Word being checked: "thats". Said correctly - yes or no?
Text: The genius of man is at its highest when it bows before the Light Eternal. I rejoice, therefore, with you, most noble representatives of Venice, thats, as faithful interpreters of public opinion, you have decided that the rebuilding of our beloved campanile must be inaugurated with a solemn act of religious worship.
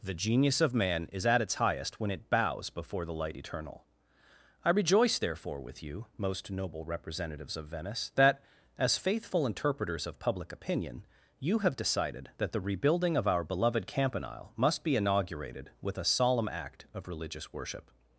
no